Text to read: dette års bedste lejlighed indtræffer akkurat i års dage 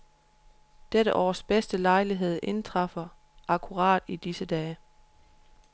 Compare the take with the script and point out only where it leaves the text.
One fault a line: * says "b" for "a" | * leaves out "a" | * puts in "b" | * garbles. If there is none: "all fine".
* says "disse" for "års"